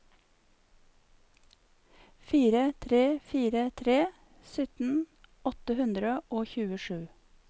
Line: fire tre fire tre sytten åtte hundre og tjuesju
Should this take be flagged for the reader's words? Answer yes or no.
no